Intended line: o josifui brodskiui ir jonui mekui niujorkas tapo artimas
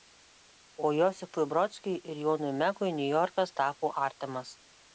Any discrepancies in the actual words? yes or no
no